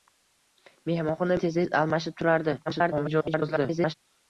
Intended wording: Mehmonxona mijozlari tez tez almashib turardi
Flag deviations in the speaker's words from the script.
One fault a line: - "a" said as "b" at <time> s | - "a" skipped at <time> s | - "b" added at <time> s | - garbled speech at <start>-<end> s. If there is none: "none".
- "mijozlari" skipped at 1.4 s
- garbled speech at 2.7-3.9 s